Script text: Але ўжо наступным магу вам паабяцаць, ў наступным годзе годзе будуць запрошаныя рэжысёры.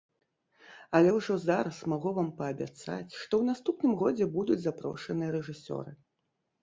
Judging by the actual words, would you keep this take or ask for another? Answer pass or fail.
fail